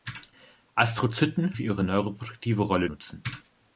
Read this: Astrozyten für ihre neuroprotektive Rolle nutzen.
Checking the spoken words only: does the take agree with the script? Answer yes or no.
yes